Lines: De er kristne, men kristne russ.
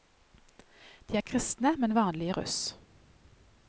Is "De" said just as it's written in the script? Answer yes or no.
yes